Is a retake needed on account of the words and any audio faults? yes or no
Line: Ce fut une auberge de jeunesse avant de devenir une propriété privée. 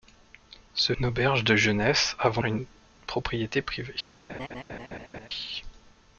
yes